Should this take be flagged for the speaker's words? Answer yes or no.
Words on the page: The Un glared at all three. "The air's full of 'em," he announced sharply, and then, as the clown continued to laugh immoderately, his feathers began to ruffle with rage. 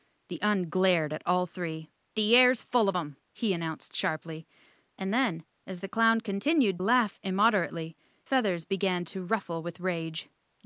yes